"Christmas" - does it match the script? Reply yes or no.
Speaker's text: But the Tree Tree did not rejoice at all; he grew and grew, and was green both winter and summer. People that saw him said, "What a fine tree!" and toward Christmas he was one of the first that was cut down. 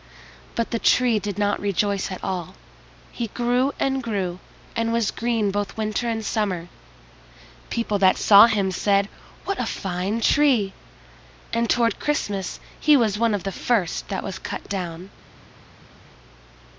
yes